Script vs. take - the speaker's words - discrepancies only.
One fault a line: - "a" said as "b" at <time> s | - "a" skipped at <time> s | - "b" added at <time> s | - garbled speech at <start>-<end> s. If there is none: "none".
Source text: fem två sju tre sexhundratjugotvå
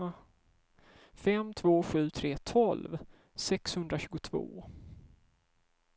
- "tolv" added at 2.4 s